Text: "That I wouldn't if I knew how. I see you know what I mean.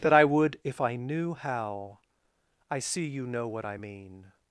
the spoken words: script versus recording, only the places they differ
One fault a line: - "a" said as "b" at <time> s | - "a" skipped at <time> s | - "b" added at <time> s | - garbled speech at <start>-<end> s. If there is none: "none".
- "wouldn't" said as "would" at 0.2 s